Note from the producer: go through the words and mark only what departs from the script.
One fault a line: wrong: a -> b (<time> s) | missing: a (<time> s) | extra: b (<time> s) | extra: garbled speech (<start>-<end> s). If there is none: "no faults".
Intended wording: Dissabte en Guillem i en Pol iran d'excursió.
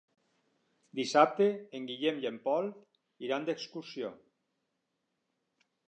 no faults